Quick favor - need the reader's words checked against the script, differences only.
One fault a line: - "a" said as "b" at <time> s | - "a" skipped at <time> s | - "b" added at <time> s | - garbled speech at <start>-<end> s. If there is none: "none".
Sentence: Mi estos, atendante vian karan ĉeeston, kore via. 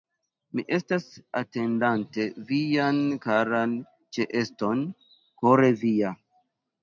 - "estos" said as "estas" at 0.8 s